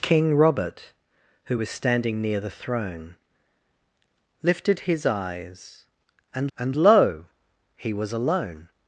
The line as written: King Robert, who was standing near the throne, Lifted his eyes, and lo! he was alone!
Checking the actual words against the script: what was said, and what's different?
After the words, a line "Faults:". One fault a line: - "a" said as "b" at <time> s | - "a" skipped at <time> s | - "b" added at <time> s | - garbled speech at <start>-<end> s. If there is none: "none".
King Robert, who was standing near the throne, Lifted his eyes, and and lo! he was alone!
Faults:
- "and" added at 6.6 s